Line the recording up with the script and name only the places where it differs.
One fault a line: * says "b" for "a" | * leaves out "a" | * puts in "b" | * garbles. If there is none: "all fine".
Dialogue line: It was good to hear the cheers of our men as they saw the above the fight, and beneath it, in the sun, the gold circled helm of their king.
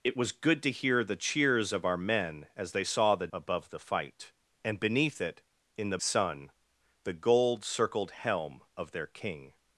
all fine